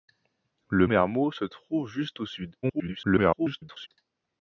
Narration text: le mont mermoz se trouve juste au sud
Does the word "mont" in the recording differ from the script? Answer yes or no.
yes